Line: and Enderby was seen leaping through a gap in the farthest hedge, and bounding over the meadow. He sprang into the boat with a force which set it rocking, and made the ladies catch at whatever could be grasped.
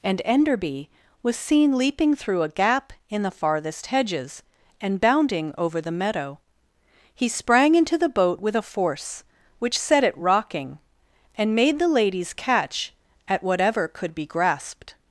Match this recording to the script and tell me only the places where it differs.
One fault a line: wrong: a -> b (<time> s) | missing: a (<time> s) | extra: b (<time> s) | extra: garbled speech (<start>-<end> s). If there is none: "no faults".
wrong: hedge -> hedges (3.9 s)